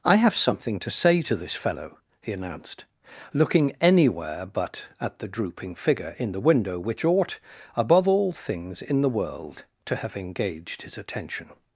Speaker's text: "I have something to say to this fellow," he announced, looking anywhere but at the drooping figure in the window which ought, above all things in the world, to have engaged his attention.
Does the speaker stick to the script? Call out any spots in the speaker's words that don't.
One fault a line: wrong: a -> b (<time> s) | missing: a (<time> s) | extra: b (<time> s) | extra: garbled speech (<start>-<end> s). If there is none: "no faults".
no faults